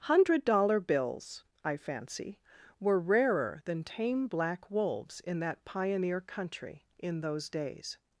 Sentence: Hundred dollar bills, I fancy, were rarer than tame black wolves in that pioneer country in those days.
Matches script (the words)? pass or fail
pass